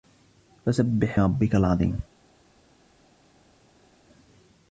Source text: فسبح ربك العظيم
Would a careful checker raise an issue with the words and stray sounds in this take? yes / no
no